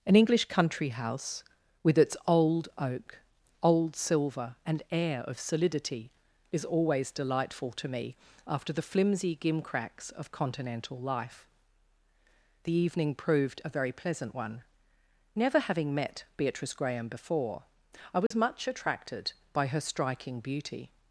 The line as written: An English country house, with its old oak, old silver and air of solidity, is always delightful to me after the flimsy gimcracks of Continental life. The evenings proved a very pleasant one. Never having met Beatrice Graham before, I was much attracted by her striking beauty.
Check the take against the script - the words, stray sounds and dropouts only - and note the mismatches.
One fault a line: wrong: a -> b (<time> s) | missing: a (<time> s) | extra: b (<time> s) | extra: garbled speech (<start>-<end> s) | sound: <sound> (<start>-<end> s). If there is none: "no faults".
wrong: evenings -> evening (12.7 s)
sound: dropout (18.3-18.3 s)